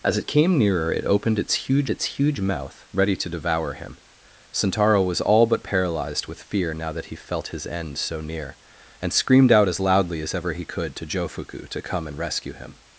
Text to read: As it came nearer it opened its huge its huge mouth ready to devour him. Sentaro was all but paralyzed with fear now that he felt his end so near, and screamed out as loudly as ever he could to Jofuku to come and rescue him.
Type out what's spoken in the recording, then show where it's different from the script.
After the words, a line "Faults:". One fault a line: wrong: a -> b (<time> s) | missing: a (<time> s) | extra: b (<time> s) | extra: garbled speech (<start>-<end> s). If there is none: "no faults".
As it came nearer it opened its huge its huge mouth ready to devour him. Sentaro was all but paralyzed with fear now that he felt his end so near, and screamed out as loudly as ever he could to Jofuku to come and rescue him.
Faults:
no faults